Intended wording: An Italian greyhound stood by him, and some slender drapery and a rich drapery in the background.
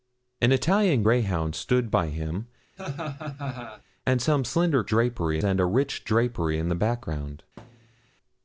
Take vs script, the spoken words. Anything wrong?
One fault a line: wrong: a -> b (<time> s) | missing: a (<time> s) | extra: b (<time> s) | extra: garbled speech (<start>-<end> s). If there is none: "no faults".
no faults